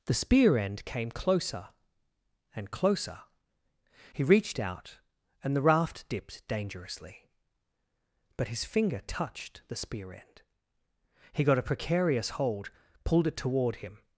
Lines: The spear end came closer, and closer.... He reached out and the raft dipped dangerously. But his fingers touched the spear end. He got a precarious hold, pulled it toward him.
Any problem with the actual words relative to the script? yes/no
yes